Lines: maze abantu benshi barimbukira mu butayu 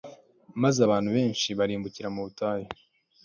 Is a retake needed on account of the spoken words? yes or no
no